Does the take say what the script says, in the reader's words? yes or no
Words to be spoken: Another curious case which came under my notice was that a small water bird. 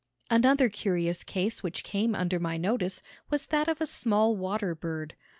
no